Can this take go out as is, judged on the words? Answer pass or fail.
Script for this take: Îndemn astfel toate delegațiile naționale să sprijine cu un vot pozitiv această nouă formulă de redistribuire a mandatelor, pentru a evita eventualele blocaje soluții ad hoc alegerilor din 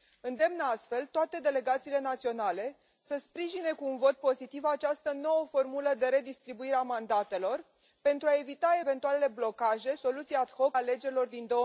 pass